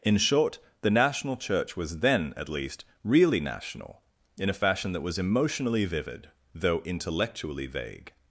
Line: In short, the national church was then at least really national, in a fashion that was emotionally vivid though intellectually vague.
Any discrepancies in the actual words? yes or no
no